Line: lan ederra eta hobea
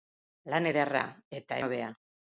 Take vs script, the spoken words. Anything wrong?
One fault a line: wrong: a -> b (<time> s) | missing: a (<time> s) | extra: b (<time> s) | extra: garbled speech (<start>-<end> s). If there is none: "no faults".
no faults